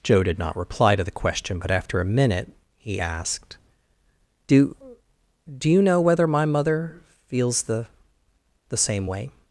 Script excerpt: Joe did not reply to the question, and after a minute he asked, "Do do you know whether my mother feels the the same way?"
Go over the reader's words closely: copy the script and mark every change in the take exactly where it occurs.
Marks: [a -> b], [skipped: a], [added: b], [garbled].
Joe did not reply to the question, [and -> but] after a minute he asked, "Do do you know whether my mother feels the the same way?"